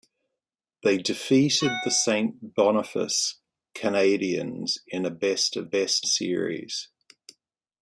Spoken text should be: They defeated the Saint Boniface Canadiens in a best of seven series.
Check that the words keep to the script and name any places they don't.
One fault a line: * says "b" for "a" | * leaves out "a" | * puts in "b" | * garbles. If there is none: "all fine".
* says "best" for "seven"